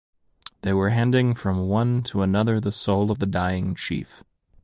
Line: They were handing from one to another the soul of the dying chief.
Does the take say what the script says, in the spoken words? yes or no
yes